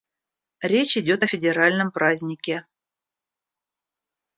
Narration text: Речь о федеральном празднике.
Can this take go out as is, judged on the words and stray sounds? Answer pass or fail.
fail